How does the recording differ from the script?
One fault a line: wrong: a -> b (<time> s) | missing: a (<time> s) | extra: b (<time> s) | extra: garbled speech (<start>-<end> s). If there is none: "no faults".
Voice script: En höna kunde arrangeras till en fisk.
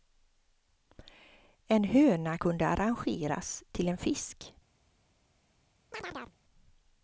no faults